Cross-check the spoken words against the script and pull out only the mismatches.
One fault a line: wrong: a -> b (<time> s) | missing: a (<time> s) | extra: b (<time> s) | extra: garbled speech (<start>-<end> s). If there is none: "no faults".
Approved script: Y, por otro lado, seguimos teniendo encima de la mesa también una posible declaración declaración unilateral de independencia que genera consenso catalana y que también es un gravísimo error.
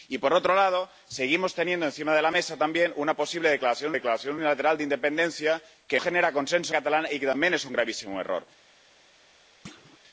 no faults